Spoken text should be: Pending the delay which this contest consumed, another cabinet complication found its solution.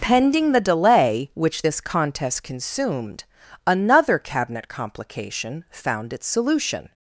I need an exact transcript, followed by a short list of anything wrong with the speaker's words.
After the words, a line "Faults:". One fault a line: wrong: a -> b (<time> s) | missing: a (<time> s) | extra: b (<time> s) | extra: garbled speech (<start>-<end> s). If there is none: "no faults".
Pending the delay which this contest consumed, another cabinet complication found its solution.
Faults:
no faults